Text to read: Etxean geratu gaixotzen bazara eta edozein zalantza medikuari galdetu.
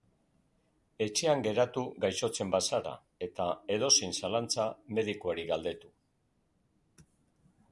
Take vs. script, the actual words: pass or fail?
pass